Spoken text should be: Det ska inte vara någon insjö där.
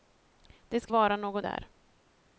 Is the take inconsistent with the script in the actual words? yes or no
yes